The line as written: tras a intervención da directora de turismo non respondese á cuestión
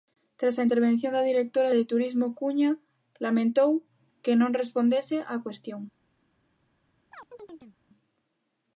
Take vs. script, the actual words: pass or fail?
fail